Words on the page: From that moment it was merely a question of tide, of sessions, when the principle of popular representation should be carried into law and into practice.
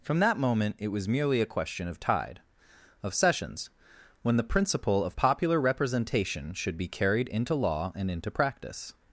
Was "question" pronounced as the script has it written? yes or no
yes